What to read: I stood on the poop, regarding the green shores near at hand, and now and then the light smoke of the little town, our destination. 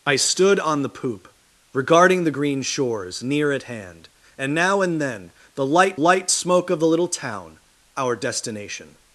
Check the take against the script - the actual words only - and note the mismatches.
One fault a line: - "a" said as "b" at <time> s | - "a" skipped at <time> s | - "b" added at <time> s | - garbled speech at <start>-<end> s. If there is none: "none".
- "light" added at 5.9 s